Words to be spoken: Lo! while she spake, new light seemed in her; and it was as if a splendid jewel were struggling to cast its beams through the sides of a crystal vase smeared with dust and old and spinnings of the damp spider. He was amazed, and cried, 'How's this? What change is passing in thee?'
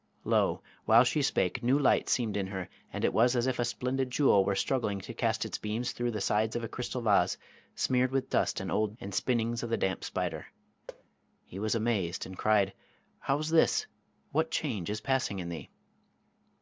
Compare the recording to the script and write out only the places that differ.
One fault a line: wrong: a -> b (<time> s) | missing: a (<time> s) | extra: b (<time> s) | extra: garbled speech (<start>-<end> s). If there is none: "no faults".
no faults